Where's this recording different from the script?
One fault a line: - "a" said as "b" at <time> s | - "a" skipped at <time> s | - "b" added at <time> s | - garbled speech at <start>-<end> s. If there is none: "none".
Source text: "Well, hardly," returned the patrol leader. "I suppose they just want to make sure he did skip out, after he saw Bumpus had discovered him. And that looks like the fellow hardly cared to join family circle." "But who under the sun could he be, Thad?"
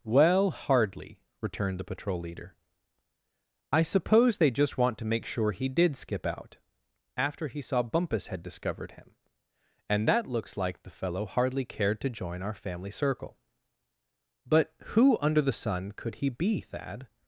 - "our" added at 12.4 s